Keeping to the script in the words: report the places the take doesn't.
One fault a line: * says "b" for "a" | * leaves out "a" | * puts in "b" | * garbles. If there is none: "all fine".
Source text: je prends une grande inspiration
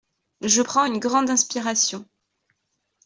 all fine